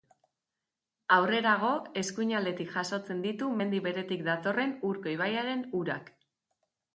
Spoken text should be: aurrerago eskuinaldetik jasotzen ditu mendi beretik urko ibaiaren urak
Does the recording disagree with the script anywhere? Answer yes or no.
yes